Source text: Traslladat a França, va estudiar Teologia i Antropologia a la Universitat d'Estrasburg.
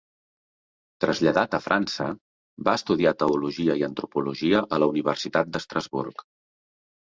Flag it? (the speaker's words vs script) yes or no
no